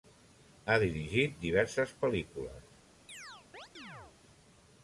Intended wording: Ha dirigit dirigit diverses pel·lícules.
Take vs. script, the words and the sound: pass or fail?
fail